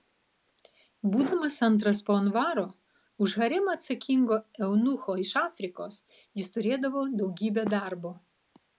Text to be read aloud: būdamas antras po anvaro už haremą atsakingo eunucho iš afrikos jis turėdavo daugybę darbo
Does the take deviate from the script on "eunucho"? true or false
false